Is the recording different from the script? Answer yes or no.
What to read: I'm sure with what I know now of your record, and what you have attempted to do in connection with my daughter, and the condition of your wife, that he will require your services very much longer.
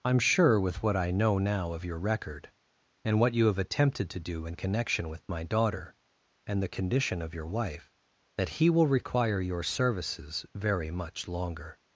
no